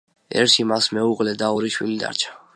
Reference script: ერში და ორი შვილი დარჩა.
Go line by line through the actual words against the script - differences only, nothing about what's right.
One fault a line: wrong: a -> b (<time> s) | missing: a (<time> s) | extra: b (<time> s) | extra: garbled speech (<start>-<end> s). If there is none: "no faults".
extra: მას მეუღლე (0.7 s)